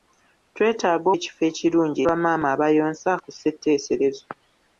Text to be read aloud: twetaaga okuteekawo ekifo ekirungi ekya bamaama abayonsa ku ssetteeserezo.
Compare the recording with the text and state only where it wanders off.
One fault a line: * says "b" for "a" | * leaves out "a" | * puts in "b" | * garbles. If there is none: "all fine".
* leaves out "okuteekawo"
* leaves out "ekya"